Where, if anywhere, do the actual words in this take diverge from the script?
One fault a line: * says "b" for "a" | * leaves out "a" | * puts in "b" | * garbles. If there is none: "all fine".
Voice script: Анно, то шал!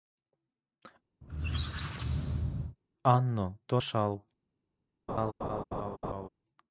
all fine